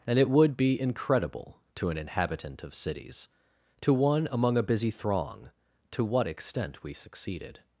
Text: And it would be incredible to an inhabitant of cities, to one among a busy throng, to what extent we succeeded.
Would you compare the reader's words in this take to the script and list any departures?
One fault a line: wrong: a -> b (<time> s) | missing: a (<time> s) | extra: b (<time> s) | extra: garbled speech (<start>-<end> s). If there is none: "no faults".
no faults